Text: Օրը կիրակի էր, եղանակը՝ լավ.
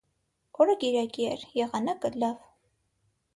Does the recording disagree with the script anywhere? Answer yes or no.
no